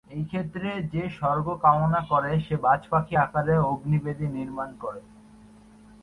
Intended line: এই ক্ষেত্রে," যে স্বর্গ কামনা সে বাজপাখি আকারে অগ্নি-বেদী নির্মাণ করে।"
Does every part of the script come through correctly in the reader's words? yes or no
no